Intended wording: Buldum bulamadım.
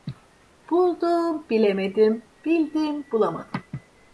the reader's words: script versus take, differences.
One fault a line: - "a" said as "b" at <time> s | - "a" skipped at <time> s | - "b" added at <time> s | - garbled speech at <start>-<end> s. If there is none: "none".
- "bilemedim bildim" added at 1.5 s